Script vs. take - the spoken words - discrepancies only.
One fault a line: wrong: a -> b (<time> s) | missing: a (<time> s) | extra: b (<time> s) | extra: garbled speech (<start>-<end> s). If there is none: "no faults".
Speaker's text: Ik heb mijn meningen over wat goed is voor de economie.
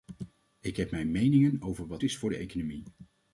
missing: goed (2.0 s)